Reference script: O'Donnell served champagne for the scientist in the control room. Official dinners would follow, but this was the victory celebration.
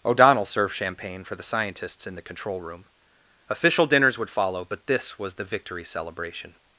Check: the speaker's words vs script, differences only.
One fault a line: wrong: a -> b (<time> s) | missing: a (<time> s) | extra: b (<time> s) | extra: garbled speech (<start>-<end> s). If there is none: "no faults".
wrong: scientist -> scientists (1.4 s)